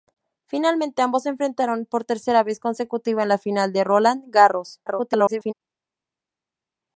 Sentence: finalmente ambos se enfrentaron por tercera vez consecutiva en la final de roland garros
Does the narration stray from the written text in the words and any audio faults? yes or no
yes